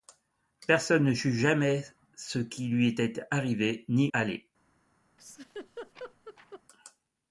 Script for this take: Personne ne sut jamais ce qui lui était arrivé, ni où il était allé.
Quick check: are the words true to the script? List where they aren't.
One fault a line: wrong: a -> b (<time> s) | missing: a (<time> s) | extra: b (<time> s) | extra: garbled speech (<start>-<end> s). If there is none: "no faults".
missing: où il était (4.1 s)